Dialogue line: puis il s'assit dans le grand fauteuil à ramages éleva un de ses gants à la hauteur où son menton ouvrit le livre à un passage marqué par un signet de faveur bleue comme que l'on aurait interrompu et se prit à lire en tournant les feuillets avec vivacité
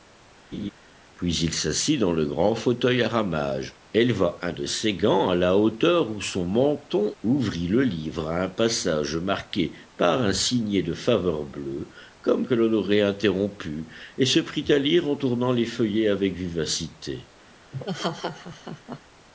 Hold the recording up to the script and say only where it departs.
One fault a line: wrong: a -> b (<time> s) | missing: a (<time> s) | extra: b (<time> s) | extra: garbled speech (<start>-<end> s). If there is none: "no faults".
no faults